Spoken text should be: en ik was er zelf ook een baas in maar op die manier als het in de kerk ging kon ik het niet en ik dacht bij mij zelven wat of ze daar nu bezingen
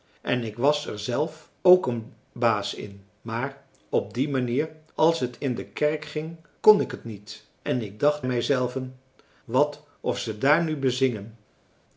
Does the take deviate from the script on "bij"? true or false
true